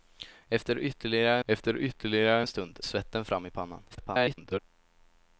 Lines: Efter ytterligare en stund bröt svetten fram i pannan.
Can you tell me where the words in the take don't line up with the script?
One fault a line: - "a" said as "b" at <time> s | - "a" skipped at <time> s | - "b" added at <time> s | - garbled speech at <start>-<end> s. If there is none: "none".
- "efter ytterligare" added at 1.5 s
- "bröt" skipped at 2.8 s
- garbled speech at 3.9-4.6 s